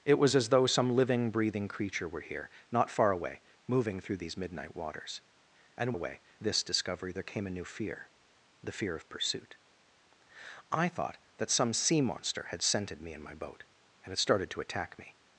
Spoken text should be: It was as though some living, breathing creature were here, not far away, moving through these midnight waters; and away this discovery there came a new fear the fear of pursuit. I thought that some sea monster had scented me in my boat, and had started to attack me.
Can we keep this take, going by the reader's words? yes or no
yes